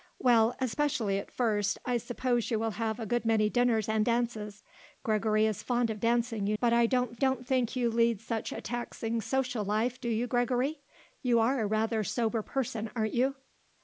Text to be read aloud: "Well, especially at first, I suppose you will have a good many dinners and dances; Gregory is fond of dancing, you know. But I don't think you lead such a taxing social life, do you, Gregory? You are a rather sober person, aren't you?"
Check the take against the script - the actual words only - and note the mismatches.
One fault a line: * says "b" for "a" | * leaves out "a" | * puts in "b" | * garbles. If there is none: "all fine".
* leaves out "know"
* puts in "don't"